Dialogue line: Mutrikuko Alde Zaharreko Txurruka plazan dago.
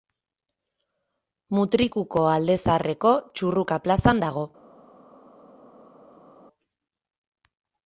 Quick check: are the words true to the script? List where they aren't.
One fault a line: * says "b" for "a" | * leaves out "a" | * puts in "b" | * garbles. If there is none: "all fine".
all fine